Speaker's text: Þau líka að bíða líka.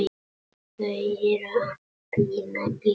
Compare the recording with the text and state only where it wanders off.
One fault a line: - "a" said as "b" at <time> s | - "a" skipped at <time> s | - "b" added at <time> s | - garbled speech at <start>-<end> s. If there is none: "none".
- "líka" said as "eru" at 0.9 s